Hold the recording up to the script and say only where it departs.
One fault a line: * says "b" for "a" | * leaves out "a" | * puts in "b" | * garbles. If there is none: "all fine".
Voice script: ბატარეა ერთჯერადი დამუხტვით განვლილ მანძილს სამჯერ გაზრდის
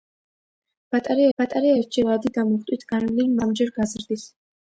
* puts in "ბატარეა"
* leaves out "მანძილს"